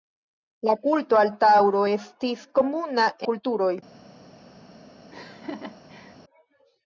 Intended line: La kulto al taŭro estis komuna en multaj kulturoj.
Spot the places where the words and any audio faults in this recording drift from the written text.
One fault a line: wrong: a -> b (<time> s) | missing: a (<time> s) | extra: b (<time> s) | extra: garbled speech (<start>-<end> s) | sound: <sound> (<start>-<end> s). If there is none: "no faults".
missing: en multaj (3.1 s)
sound: laugh (5.1-6.2 s)